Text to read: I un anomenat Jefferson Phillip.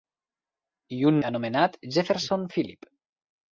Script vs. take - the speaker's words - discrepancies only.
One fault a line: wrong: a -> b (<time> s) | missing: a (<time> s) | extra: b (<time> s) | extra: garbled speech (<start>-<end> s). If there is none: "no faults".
no faults